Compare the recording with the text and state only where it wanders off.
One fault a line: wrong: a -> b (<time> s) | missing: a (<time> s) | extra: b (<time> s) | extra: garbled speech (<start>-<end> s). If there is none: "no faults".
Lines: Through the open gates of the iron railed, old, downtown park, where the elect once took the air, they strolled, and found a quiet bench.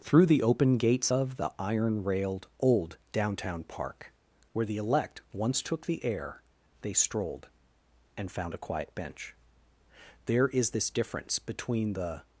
extra: There is this difference between the (10.3 s)